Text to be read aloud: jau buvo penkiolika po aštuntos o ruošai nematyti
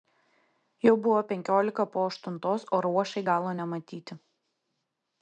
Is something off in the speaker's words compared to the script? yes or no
yes